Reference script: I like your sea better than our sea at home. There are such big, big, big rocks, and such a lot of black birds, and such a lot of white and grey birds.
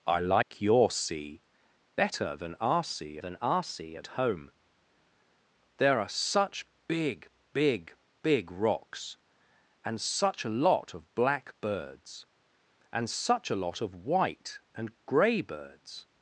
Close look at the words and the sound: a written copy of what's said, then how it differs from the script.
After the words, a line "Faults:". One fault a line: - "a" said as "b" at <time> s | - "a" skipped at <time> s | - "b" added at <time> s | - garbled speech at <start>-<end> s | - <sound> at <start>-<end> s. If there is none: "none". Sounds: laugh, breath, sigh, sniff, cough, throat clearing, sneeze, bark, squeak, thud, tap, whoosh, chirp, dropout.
I like your sea better than our sea than our sea at home. There are such big, big, big rocks, and such a lot of black birds, and such a lot of white and grey birds.
Faults:
- dropout at 0.4-0.5 s
- "than our sea" added at 3.2 s